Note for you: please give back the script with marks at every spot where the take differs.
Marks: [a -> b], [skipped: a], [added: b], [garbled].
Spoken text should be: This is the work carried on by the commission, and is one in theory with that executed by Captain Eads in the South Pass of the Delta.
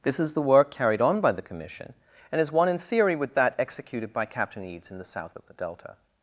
This is the work carried on by the commission, and is one in theory with that executed by Captain Eads in the South [skipped: Pass] of the Delta.